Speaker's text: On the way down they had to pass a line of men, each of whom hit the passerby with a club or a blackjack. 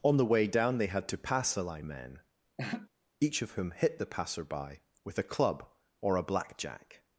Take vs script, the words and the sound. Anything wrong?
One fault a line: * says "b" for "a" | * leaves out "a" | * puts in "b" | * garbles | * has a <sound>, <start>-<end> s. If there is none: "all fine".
* leaves out "of"
* has a laugh, 2.6-2.9 s